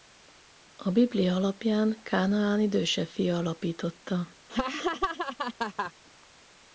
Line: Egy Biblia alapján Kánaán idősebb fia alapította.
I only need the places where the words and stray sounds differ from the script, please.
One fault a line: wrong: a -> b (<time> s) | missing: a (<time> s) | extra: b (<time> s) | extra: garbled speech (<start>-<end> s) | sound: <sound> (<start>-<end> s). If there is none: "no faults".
wrong: Egy -> A (0.8 s)
sound: laugh (4.5-5.9 s)